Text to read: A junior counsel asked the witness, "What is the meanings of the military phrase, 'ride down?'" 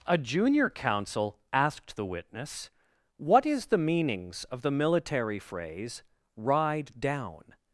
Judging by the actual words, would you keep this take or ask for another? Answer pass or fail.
pass